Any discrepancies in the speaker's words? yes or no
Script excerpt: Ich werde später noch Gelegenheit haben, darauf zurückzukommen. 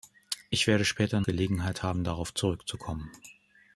yes